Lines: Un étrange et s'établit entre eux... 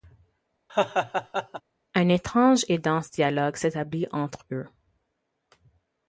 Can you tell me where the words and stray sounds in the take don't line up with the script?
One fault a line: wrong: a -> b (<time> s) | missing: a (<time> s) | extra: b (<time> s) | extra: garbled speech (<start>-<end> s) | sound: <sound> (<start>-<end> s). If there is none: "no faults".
sound: laugh (0.7-1.6 s)
extra: dense dialogue (2.8 s)